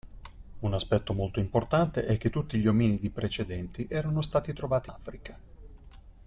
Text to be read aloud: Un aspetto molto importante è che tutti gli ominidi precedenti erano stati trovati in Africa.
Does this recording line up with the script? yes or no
no